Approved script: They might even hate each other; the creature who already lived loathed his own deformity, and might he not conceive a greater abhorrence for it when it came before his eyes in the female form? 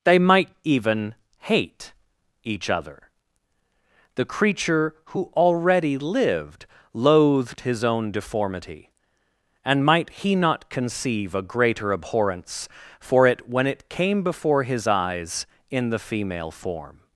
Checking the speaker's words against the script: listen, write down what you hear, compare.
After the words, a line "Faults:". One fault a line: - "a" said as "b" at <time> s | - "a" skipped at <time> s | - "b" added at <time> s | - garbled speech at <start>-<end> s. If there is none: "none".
They might even hate each other; the creature who already lived loathed his own deformity, and might he not conceive a greater abhorrence for it when it came before his eyes in the female form?
Faults:
none